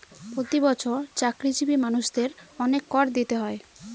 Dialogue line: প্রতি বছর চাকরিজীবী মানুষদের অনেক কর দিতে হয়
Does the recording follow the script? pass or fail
pass